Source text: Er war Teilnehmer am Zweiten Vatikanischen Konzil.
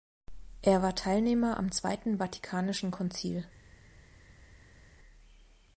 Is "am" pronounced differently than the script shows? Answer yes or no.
no